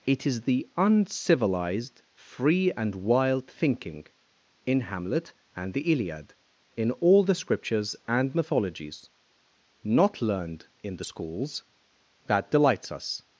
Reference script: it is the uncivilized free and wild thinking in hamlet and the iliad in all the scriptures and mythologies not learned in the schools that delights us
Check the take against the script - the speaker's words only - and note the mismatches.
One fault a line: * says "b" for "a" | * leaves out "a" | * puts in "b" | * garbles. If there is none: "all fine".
all fine